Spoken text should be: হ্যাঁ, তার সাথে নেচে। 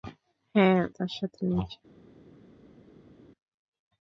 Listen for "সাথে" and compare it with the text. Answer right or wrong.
right